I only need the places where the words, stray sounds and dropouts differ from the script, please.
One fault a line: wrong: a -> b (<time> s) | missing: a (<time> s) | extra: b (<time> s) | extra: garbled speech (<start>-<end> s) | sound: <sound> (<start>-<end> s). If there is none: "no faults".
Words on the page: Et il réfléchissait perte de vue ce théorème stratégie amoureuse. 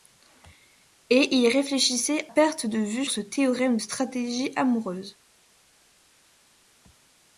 no faults